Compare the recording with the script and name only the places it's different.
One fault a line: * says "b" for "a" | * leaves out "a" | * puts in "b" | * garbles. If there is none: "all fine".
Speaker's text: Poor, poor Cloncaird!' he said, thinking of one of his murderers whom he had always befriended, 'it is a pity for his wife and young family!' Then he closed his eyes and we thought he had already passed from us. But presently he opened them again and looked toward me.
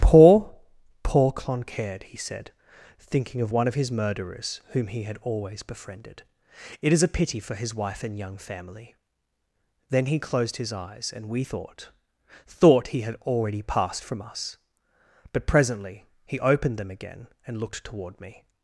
* puts in "thought"